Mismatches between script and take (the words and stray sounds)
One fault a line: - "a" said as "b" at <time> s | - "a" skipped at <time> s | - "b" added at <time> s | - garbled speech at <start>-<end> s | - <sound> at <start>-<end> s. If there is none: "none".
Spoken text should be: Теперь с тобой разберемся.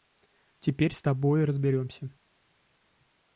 none